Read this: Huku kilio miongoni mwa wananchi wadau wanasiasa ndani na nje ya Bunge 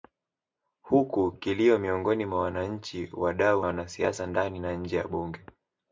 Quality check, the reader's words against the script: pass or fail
pass